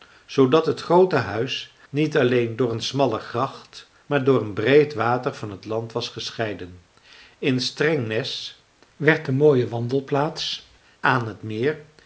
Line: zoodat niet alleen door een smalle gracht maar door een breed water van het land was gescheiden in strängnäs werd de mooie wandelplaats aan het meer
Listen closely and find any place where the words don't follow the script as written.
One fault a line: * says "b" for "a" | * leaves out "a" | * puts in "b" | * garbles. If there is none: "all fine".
* puts in "het groote huis"